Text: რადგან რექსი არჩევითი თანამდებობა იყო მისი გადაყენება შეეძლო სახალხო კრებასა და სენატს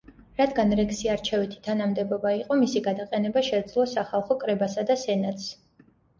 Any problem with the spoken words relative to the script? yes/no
no